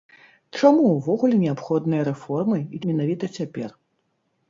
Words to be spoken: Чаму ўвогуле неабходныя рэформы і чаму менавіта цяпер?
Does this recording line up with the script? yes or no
no